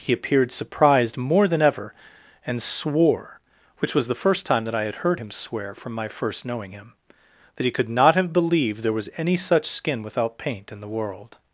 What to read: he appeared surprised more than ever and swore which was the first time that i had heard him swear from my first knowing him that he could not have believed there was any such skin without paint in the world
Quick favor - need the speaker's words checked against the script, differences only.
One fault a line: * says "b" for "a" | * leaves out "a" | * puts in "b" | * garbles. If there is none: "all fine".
all fine